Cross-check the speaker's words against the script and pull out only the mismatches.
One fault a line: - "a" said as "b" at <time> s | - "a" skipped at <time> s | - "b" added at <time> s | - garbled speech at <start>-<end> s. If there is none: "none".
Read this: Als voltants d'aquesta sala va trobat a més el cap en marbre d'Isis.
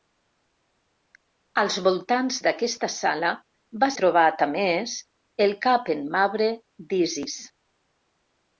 none